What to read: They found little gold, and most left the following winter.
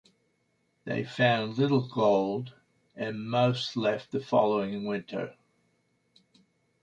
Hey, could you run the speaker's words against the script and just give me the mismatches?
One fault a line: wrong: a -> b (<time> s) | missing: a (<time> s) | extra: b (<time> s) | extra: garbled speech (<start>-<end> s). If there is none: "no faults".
no faults